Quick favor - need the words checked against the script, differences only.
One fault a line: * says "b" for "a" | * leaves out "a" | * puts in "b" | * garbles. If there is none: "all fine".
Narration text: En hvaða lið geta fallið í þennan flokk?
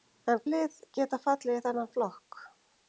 * leaves out "hvaða"